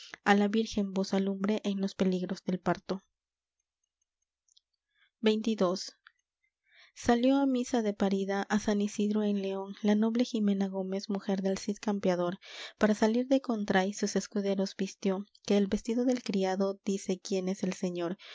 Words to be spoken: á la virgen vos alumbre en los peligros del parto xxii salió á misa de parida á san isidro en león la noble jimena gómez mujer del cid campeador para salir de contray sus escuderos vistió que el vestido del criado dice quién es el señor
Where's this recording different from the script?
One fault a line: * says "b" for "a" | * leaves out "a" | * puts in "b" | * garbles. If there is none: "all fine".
all fine